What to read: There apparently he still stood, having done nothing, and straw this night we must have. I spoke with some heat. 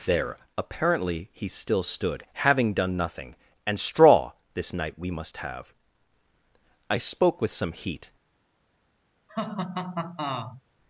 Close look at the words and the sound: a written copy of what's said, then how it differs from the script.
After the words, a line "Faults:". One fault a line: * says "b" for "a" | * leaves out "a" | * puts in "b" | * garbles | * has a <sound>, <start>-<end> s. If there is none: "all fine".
There apparently he still stood, having done nothing, and straw this night we must have. I spoke with some heat.
Faults:
* has a laugh, 9.3-10.6 s